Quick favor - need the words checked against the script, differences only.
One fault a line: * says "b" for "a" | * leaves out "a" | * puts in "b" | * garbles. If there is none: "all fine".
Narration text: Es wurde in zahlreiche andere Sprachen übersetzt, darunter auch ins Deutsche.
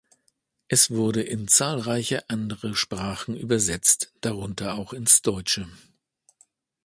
all fine